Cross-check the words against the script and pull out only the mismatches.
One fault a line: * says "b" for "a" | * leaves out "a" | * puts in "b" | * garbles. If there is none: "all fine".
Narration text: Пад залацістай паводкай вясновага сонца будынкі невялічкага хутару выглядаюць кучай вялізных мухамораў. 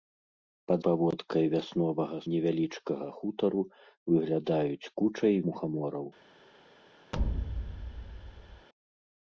* leaves out "залацістай"
* leaves out "сонца будынкі"
* leaves out "вялізных"